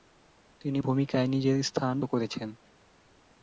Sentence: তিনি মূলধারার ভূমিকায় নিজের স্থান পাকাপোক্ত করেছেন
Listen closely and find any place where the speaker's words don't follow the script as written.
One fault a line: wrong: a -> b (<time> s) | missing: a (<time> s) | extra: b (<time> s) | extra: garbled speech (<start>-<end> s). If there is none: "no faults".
missing: মূলধারার (0.8 s)
missing: পাকাপোক্ত (1.9 s)